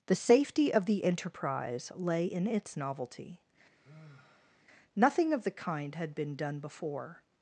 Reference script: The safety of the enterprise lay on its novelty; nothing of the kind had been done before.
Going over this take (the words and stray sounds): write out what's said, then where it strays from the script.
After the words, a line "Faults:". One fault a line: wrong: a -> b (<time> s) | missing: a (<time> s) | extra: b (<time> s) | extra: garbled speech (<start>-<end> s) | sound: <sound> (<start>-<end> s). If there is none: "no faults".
The safety of the enterprise lay in its novelty; nothing of the kind had been done before.
Faults:
wrong: on -> in (2.2 s)
sound: sigh (3.8-4.7 s)